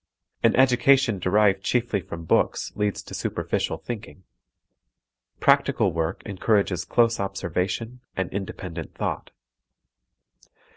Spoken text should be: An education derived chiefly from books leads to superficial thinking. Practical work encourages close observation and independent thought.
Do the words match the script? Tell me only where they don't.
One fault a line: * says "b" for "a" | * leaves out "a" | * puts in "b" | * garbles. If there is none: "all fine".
all fine